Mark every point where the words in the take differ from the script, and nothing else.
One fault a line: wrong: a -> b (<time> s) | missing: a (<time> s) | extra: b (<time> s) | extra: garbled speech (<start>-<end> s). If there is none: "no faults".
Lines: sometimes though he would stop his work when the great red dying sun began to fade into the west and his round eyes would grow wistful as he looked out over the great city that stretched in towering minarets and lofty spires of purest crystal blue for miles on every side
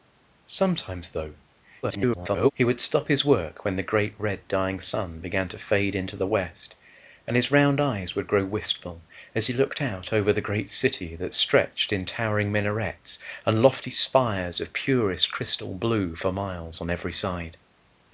extra: garbled speech (1.8-2.5 s)